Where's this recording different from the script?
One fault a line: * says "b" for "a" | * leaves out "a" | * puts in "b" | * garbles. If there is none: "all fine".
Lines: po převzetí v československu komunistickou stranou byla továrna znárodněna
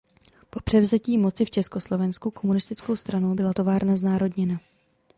* puts in "moci"